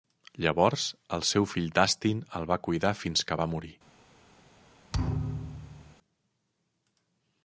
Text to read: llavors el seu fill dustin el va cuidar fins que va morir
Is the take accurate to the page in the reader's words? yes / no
yes